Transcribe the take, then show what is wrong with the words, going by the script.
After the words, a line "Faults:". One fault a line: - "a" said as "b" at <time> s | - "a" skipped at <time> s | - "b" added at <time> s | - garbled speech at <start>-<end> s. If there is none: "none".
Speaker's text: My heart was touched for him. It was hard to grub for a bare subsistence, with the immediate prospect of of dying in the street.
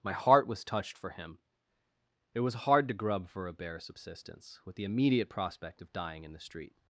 My heart was touched for him. It was hard to grub for a bare subsistence, with the immediate prospect of dying in the street.
Faults:
- "of" skipped at 5.9 s